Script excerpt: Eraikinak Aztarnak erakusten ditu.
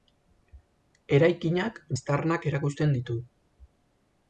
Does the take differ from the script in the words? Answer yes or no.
no